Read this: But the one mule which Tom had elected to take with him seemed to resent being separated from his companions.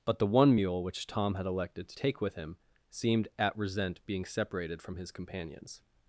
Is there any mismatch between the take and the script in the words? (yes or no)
yes